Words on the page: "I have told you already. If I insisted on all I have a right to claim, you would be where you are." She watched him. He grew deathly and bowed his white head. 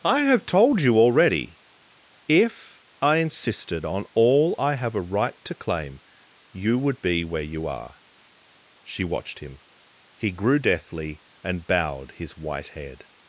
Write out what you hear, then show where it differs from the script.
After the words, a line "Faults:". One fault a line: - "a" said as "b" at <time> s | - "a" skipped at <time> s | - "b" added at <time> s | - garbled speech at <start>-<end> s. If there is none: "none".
"I have told you already. If I insisted on all I have a right to claim, you would be where you are." She watched him. He grew deathly and bowed his white head.
Faults:
none